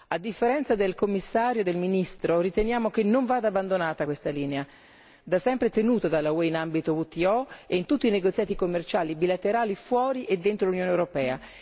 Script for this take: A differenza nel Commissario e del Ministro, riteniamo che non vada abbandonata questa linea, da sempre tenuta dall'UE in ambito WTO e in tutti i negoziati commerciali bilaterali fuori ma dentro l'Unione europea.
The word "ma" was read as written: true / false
false